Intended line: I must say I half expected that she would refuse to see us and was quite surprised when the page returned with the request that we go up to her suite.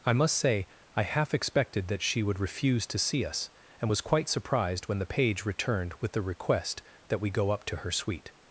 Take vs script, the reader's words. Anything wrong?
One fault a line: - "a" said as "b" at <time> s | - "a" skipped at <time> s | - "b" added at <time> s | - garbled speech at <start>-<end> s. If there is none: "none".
none